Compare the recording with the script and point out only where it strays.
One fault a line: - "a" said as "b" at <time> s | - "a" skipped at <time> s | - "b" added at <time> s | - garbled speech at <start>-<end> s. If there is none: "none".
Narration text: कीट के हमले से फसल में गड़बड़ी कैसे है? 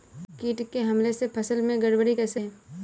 none